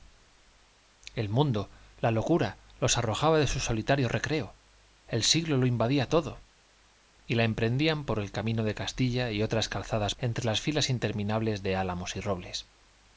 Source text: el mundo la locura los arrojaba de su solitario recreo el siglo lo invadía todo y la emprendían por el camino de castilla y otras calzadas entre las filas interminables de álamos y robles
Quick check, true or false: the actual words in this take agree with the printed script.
true